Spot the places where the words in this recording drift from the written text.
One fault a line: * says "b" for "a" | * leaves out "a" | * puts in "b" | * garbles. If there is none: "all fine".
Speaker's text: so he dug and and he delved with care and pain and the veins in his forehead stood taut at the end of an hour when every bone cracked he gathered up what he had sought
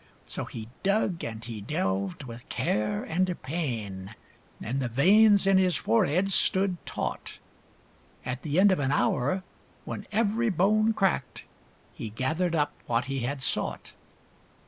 * leaves out "and"